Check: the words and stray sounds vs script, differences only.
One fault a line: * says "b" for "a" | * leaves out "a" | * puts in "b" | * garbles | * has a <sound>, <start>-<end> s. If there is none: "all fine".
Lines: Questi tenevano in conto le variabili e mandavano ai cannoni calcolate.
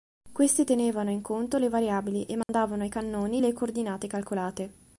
* has a dropout, 2.4-2.5 s
* puts in "le coordinate"